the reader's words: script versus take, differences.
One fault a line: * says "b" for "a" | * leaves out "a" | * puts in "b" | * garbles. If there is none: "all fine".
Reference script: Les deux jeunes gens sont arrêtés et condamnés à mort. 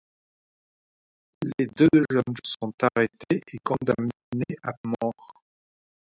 * leaves out "gens"